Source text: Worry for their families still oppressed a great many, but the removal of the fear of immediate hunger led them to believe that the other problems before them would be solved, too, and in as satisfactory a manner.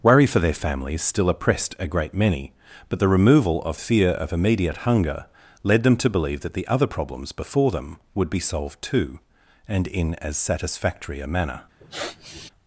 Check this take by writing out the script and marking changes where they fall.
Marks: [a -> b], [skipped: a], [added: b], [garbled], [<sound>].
Worry for their families still oppressed a great many, but the removal of [skipped: the] fear of immediate hunger led them to believe that the other problems before them would be solved, too, and in as satisfactory a manner. [sniff]